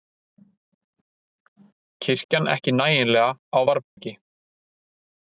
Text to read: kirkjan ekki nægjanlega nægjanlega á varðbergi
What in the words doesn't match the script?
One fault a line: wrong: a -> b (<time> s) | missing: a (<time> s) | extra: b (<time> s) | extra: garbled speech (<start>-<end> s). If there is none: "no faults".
missing: nægjanlega (3.3 s)